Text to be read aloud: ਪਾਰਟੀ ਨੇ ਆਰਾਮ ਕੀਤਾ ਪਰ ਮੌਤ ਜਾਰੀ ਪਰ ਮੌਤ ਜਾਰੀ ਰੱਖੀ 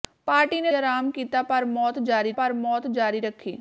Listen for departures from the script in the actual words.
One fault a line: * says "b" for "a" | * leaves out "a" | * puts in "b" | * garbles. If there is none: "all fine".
all fine